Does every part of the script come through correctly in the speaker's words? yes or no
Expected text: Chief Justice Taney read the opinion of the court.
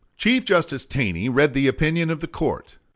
yes